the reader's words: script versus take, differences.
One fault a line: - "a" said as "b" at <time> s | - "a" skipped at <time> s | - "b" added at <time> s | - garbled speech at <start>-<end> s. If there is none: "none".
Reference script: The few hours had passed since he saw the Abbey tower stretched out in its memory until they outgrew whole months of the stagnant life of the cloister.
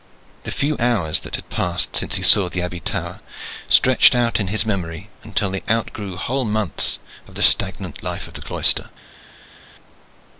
- "that" added at 1.2 s
- "its" said as "his" at 4.5 s